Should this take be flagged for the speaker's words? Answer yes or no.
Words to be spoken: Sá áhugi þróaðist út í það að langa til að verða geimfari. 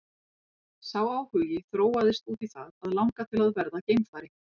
no